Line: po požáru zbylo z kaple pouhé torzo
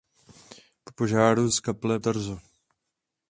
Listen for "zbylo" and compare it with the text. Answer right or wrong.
wrong